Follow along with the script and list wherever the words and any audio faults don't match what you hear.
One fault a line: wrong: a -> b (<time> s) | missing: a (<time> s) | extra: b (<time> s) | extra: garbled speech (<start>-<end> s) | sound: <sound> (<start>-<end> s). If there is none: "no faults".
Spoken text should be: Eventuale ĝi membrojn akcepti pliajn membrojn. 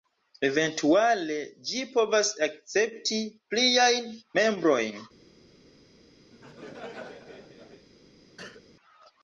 wrong: membrojn -> povas (2.0 s)
sound: laugh (6.3-7.9 s)
sound: cough (8.4-8.7 s)